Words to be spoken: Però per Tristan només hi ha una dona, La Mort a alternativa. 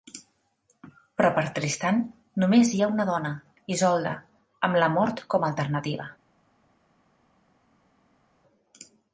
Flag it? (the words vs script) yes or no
yes